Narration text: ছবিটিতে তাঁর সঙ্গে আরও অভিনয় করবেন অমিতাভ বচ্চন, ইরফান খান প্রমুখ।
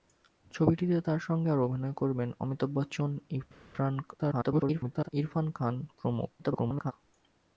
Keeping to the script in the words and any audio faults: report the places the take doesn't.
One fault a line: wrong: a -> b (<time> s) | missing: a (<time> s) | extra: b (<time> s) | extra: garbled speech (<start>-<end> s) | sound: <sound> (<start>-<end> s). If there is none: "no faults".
extra: garbled speech (4.2-5.1 s)
extra: garbled speech (6.4-6.9 s)